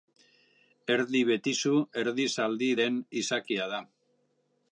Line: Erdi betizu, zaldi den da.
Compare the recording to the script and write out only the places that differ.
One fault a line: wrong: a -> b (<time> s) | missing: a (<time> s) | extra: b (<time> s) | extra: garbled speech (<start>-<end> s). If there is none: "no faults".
extra: erdi (2.0 s)
extra: izakia (3.2 s)